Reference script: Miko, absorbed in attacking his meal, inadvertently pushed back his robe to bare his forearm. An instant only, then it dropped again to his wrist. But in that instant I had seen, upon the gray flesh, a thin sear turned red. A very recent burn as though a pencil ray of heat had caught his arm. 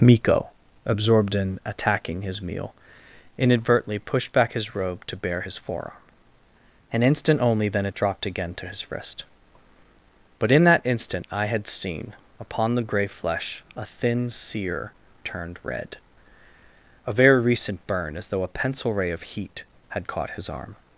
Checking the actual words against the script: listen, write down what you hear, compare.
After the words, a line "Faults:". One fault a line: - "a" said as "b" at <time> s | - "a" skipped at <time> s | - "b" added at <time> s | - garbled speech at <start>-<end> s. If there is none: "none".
Miko, absorbed in attacking his meal, inadvertently pushed back his robe to bare his forearm. An instant only, then it dropped again to his wrist. But in that instant I had seen, upon the gray flesh, a thin sear turned red. A very recent burn as though a pencil ray of heat had caught his arm.
Faults:
none